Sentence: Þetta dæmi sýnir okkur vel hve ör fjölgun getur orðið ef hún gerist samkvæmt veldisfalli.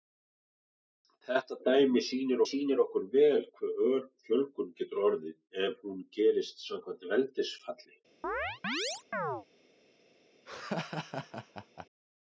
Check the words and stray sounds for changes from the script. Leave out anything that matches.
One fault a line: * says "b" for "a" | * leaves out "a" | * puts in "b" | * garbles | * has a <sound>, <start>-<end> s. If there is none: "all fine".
* puts in "sýnir"
* has a chirp, 8.2-9.5 s
* has a laugh, 10.5-11.9 s